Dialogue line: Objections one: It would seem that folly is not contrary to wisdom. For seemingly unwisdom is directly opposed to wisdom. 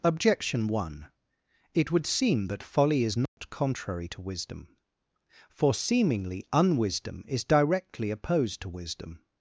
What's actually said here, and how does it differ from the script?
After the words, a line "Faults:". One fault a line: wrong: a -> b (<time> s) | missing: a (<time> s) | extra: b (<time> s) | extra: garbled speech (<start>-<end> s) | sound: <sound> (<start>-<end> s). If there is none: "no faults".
Objection one: It would seem that folly is not contrary to wisdom. For seemingly unwisdom is directly opposed to wisdom.
Faults:
wrong: Objections -> Objection (0.0 s)
sound: dropout (3.3-3.4 s)